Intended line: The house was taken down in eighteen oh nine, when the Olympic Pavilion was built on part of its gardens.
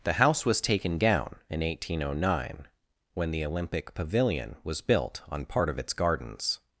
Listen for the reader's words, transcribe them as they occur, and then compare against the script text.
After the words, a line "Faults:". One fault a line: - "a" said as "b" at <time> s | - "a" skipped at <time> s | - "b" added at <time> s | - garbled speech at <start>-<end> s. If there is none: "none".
The house was taken down in eighteen oh nine, when the Olympic Pavilion was built on part of its gardens.
Faults:
none